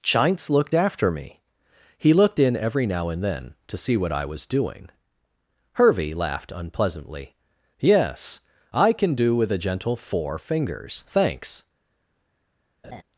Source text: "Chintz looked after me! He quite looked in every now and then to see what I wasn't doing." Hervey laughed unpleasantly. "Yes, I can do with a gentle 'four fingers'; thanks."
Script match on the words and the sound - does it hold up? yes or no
no